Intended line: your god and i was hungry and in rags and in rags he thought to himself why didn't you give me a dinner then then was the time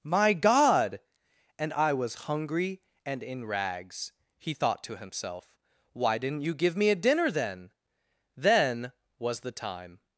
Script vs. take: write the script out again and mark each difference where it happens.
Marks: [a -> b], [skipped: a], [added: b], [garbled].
[your -> my] god and i was hungry and in rags [skipped: and in rags] he thought to himself why didn't you give me a dinner then then was the time